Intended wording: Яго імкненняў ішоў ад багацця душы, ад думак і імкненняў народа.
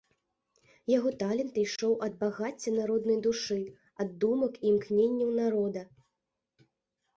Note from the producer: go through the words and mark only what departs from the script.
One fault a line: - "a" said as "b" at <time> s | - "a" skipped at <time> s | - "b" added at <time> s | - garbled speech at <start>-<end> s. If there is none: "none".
- "імкненняў" said as "талент" at 1.2 s
- "народнай" added at 2.8 s